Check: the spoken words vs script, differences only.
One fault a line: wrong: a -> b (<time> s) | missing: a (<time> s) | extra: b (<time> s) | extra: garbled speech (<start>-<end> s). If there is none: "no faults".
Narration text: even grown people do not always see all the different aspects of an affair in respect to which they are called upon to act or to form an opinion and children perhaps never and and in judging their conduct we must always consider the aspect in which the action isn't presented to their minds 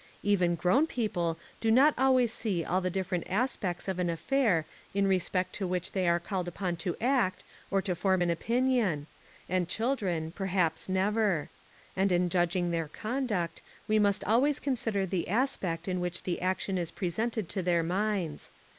missing: and (12.1 s)
wrong: isn't -> is (16.8 s)